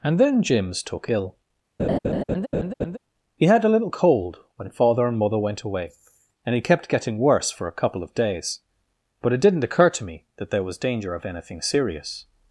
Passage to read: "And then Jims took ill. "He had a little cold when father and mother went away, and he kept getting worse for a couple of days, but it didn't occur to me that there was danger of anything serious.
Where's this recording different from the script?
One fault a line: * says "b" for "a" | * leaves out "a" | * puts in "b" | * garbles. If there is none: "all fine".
all fine